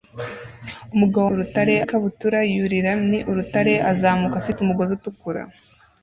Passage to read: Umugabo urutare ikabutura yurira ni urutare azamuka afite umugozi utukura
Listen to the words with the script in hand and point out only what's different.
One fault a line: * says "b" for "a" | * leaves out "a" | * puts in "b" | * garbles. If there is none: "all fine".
all fine